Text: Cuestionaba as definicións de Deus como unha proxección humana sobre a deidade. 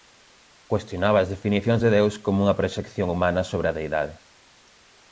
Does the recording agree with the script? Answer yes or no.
yes